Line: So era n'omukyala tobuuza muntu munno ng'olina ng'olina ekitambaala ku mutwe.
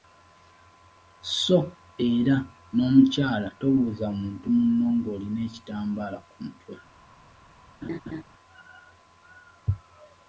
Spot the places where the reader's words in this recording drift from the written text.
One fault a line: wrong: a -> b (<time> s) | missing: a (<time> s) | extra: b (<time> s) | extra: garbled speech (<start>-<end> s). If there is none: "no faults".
missing: ng'olina (5.4 s)